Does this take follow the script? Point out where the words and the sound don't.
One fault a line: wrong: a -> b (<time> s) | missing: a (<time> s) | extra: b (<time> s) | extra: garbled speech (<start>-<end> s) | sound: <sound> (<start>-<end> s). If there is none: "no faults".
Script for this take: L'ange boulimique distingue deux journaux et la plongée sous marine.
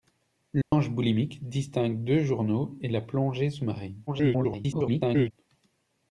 sound: dropout (0.6-0.7 s)
extra: garbled speech (4.1-5.3 s)